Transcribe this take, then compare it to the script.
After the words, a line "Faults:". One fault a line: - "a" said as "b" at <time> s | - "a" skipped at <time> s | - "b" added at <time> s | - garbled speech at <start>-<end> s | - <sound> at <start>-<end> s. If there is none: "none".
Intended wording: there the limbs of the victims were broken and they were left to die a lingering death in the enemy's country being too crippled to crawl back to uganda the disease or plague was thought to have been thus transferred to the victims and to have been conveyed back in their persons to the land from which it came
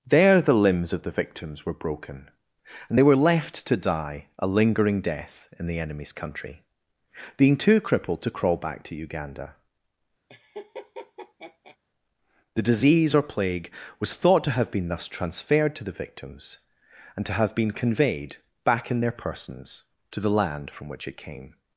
there the limbs of the victims were broken and they were left to die a lingering death in the enemy's country being too crippled to crawl back to uganda the disease or plague was thought to have been thus transferred to the victims and to have been conveyed back in their persons to the land from which it came
Faults:
- laugh at 10.3-11.8 s